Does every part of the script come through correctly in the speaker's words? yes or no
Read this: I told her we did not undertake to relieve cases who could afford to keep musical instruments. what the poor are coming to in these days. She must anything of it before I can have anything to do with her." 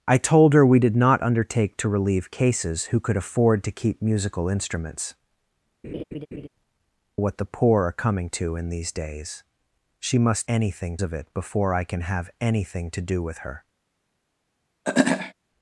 yes